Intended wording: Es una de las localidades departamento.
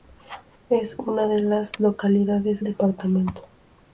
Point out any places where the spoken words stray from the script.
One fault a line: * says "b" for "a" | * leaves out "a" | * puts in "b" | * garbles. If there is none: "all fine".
all fine